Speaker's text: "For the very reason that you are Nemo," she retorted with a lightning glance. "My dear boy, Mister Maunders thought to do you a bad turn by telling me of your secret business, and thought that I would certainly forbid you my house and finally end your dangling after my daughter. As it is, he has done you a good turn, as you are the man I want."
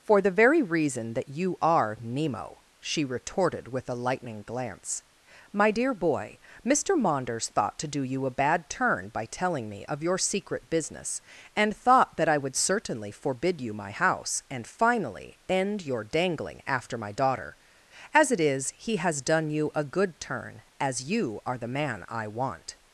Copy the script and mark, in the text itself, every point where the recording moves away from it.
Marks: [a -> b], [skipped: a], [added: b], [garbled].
"For the very reason that you are Nemo," she retorted with a lightning glance. "My dear boy, Mister Maunders thought to do you a bad turn by telling me of your secret business, and thought that I would certainly forbid you my house and finally end your dangling after my daughter. As it is, he has done you a good turn, as you are the man I want."